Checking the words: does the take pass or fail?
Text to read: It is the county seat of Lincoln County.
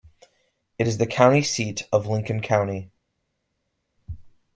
pass